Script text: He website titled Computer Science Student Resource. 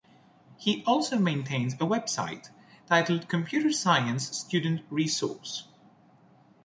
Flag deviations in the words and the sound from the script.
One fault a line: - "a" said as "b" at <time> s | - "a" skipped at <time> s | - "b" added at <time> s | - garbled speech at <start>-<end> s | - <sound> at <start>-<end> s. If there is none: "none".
- "also maintains a" added at 0.8 s